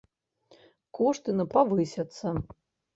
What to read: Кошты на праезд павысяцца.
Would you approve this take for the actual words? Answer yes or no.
no